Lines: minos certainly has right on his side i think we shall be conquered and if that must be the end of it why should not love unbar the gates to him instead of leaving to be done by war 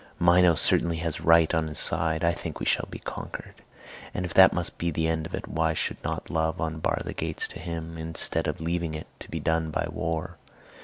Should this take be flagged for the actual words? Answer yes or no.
yes